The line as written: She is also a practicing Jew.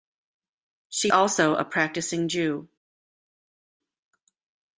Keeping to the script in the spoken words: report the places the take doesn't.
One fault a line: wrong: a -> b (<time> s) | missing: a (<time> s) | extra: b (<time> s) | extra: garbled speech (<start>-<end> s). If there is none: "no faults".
missing: is (1.1 s)